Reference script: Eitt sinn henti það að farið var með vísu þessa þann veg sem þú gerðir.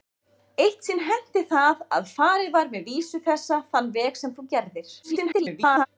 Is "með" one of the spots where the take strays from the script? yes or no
no